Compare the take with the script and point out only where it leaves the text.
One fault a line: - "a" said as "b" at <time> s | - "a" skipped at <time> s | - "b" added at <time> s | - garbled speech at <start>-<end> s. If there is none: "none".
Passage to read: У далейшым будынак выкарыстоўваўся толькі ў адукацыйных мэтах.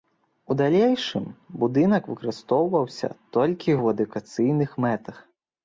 none